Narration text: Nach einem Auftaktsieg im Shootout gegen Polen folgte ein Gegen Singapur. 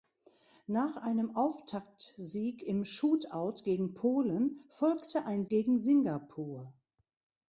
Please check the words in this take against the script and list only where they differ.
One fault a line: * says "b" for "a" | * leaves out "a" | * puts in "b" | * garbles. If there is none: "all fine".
all fine